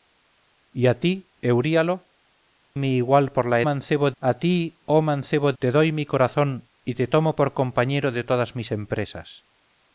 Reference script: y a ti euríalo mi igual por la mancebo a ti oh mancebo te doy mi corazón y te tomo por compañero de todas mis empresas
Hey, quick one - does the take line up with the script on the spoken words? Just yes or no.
yes